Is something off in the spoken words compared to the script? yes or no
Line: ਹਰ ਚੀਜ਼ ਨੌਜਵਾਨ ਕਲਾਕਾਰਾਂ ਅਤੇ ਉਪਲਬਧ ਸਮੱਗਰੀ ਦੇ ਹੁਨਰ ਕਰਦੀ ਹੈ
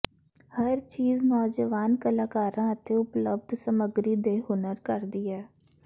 no